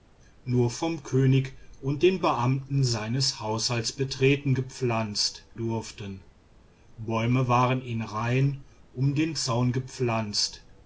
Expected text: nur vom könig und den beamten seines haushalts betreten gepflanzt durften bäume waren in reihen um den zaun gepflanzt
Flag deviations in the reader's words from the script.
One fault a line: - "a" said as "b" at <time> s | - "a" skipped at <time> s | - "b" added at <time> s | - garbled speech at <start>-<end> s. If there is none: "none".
none